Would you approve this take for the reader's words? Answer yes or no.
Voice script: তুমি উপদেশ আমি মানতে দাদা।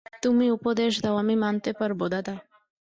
no